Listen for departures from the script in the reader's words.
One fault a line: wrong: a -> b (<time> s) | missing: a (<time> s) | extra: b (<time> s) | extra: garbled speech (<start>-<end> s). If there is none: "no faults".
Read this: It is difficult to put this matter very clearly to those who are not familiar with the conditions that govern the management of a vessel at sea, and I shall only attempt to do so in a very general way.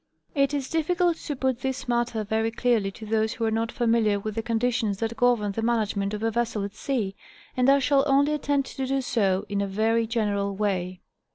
no faults